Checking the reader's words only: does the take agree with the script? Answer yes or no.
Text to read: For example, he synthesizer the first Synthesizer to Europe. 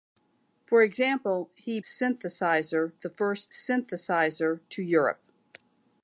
yes